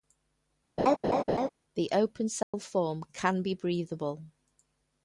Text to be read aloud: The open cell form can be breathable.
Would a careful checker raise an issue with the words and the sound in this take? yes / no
yes